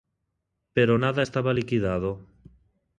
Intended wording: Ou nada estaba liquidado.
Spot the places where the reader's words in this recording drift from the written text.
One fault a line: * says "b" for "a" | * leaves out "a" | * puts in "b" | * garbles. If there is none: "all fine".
* says "Pero" for "Ou"